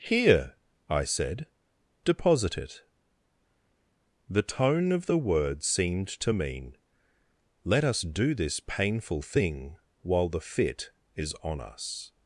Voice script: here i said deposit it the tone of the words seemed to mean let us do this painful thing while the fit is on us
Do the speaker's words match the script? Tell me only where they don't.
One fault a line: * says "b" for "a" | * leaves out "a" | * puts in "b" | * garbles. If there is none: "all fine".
all fine